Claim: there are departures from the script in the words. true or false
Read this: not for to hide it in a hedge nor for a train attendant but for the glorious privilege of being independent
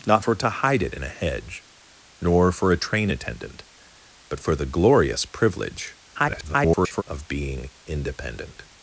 true